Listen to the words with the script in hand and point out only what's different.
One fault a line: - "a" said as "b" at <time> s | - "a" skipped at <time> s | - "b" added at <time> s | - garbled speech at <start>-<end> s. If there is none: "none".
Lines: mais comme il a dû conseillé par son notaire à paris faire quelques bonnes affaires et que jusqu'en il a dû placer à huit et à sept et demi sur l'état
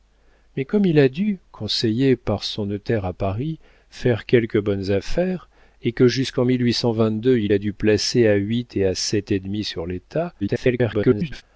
- garbled speech at 10.4-11.4 s